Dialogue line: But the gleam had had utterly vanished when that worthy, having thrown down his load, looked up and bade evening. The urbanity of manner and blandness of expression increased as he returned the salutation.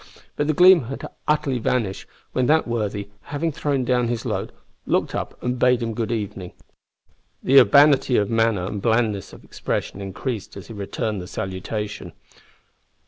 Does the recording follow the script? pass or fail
fail